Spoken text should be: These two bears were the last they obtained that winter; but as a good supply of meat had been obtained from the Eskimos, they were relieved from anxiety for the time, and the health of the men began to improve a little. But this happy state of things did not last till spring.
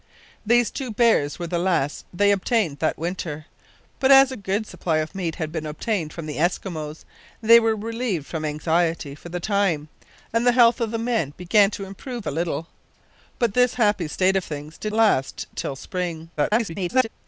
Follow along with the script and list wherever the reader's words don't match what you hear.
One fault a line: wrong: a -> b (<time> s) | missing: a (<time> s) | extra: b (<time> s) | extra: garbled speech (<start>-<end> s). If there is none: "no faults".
missing: not (14.9 s)
extra: garbled speech (16.4-17.1 s)